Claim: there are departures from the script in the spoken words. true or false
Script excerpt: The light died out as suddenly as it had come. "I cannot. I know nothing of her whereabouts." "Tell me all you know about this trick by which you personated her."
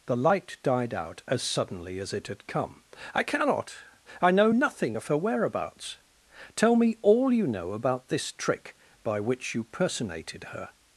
false